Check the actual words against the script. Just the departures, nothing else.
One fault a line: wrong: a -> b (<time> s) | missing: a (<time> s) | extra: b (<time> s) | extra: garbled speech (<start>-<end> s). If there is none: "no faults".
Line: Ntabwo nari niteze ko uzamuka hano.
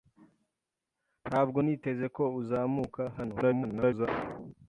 missing: nari (1.6 s)
extra: garbled speech (3.4-4.1 s)